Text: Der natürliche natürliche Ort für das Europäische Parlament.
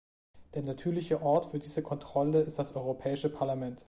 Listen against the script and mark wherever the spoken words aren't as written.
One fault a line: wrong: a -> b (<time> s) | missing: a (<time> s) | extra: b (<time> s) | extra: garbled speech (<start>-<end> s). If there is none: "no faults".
missing: natürliche (1.2 s)
extra: diese Kontrolle ist (1.6 s)